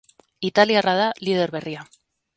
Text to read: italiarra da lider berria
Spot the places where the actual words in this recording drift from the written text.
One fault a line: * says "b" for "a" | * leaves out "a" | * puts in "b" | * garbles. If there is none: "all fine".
all fine